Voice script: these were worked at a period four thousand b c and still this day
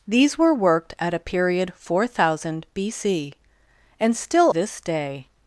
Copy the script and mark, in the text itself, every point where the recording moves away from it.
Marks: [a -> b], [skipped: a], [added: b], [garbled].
these were worked at a period four thousand b c and still this day